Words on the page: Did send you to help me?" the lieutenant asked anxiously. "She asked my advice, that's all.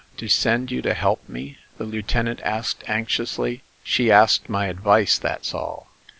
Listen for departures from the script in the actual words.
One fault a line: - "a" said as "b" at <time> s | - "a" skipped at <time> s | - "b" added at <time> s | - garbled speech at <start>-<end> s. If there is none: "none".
none